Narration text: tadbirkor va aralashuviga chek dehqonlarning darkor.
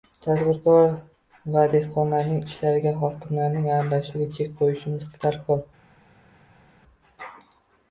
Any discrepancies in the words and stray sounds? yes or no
yes